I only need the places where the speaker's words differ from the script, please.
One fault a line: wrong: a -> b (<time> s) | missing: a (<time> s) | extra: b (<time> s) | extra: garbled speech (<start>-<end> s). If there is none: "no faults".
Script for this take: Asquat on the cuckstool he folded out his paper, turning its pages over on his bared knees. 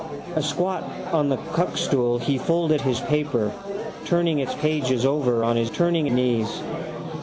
missing: out (2.8 s)
wrong: bared -> turning (5.7 s)